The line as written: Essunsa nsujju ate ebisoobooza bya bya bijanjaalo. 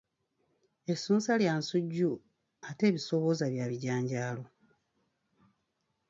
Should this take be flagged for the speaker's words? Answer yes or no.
yes